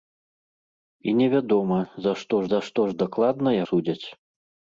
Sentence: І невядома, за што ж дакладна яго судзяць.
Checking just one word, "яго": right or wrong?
wrong